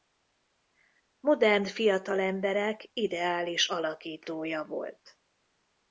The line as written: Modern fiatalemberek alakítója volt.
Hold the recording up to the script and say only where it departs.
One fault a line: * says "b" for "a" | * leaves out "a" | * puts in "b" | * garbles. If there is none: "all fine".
* puts in "ideális"